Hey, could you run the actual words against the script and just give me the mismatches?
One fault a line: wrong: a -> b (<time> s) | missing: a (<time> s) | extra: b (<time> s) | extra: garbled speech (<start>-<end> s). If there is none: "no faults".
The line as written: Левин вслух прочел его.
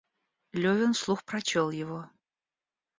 no faults